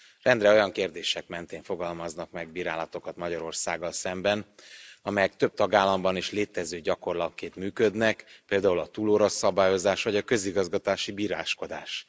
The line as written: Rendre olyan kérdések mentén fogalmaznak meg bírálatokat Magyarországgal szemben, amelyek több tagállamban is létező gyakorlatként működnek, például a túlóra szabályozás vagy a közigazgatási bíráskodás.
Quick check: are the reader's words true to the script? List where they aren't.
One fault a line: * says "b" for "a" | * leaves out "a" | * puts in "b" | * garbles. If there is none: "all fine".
all fine